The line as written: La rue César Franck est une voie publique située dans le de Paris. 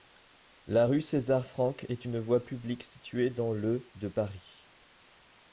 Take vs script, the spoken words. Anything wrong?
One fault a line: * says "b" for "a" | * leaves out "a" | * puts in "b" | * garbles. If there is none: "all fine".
all fine